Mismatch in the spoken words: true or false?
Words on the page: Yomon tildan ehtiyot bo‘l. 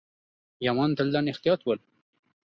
false